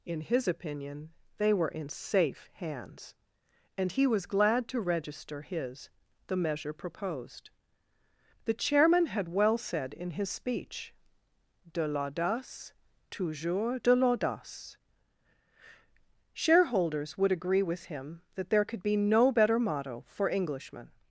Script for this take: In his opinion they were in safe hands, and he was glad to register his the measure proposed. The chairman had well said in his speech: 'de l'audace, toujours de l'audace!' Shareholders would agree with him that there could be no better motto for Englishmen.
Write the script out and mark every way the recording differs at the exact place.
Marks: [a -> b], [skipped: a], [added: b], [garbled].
In his opinion they were in safe hands, and he was glad to register his the measure proposed. The chairman had well said in his speech: 'de l'audace, toujours de l'audace!' Shareholders would agree with him that there could be no better motto for Englishmen.